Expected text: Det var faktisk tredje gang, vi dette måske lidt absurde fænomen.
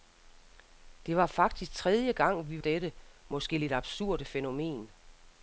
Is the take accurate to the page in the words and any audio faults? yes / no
yes